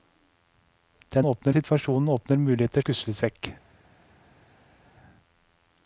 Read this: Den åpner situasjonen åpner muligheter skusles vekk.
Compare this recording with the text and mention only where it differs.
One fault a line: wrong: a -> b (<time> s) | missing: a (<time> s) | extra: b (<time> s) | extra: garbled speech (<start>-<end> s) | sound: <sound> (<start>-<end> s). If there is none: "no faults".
no faults